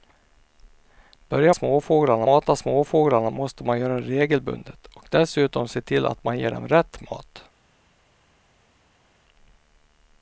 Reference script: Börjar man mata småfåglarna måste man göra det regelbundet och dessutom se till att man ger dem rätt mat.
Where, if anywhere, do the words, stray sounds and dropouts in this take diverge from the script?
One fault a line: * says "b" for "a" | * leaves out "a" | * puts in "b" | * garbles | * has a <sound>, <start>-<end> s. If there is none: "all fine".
* says "småfåglarna" for "man"